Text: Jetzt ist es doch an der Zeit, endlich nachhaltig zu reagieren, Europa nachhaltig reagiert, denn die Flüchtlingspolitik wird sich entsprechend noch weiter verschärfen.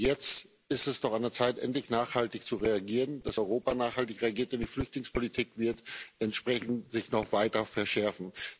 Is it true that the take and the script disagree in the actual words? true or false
true